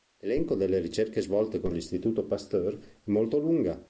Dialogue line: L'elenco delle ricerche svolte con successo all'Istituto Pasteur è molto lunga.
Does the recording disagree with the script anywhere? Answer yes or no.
yes